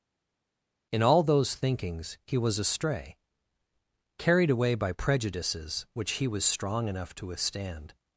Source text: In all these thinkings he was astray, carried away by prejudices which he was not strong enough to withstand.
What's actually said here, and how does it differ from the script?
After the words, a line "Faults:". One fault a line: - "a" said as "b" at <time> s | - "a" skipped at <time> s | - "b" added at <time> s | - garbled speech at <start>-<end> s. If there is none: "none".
In all those thinkings he was astray, carried away by prejudices which he was strong enough to withstand.
Faults:
- "these" said as "those" at 1.2 s
- "not" skipped at 6.4 s